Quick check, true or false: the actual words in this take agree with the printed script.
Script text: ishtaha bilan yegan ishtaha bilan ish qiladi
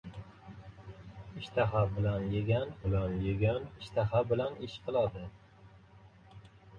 false